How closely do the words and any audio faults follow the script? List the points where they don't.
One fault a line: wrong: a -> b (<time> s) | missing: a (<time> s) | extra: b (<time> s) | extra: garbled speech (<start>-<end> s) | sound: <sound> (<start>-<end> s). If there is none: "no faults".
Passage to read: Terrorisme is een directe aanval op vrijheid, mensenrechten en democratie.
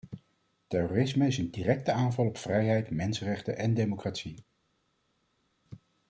no faults